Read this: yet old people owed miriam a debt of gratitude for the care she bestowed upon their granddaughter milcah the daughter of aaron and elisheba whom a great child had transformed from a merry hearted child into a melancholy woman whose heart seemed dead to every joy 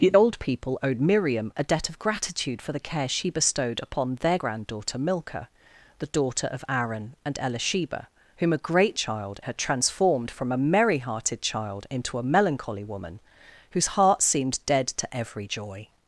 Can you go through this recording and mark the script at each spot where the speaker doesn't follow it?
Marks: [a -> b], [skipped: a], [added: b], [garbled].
yet old people owed miriam a debt of gratitude for the care she bestowed upon their granddaughter milcah the daughter of aaron and elisheba whom a great child had transformed from a merry hearted child into a melancholy woman whose heart seemed dead to every joy